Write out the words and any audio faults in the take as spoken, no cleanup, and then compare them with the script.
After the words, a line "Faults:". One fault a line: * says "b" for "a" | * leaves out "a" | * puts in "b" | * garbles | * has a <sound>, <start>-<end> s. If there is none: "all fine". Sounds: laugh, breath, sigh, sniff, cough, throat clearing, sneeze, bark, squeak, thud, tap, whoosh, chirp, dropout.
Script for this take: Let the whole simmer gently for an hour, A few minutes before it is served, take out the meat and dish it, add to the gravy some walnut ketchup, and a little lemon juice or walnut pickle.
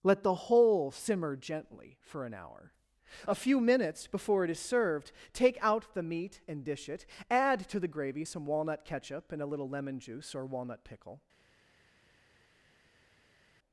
Let the whole simmer gently for an hour, A few minutes before it is served, take out the meat and dish it, add to the gravy some walnut ketchup, and a little lemon juice or walnut pickle.
Faults:
all fine